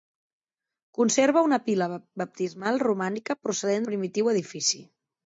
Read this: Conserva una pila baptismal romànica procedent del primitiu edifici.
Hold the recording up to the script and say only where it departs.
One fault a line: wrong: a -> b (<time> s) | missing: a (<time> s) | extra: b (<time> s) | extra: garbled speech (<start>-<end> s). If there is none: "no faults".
missing: del (3.9 s)